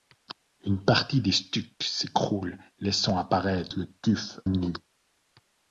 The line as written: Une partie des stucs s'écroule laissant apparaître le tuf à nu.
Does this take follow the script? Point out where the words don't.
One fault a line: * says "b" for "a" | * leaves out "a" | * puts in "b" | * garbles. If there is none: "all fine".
* leaves out "à"